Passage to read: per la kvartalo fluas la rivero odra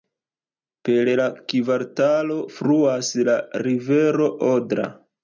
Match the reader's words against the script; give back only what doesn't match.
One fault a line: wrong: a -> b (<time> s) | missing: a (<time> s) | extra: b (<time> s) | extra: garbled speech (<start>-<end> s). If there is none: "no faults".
no faults